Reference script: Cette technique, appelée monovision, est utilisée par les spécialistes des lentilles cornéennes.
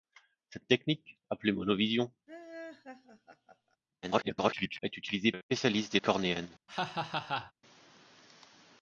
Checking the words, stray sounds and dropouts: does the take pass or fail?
fail